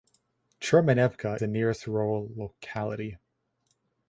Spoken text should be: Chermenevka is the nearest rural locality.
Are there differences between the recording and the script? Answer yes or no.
yes